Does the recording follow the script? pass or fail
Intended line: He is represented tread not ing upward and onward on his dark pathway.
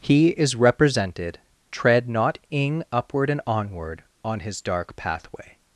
pass